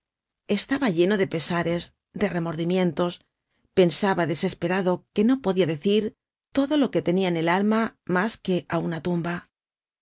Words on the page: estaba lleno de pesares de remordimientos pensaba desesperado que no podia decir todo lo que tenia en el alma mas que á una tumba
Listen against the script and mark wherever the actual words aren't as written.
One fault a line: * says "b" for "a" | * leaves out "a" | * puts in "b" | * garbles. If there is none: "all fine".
all fine